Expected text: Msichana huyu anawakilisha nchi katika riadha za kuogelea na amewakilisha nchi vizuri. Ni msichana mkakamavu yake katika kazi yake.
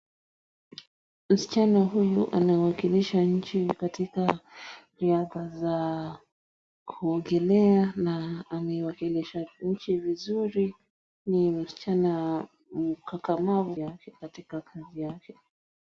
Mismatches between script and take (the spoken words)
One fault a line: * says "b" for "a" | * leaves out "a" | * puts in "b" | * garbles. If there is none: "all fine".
all fine